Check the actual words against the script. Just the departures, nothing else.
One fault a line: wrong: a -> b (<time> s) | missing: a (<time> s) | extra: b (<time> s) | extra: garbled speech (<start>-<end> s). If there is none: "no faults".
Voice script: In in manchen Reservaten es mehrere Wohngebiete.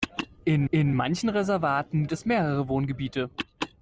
no faults